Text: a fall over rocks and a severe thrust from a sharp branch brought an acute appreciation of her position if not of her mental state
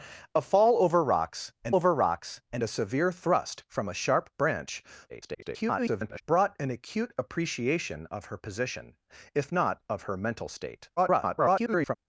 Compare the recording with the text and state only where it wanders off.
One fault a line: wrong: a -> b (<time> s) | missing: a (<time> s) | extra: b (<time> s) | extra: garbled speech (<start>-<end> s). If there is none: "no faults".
extra: over rocks and (1.7 s)
extra: garbled speech (5.1-6.2 s)
extra: garbled speech (11.0-12.0 s)